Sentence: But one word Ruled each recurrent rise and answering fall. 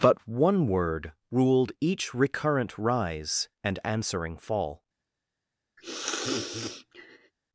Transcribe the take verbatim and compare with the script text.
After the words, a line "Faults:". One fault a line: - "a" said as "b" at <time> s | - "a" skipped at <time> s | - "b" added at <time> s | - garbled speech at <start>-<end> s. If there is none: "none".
But one word Ruled each recurrent rise and answering fall.
Faults:
none